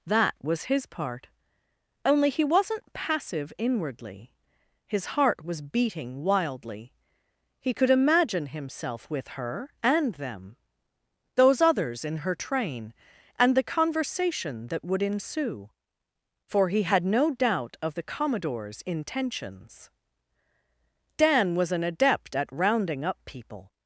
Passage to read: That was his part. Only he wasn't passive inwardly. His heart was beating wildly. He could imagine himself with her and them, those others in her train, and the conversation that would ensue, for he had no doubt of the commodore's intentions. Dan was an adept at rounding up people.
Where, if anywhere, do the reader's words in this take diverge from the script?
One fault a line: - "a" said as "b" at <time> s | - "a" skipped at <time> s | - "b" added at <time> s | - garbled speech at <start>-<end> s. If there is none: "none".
none